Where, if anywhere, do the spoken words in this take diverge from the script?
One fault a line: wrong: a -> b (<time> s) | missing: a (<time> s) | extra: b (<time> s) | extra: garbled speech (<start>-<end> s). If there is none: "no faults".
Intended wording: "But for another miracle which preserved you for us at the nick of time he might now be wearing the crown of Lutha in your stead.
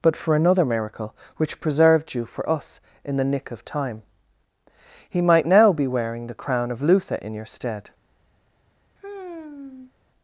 wrong: at -> in (3.0 s)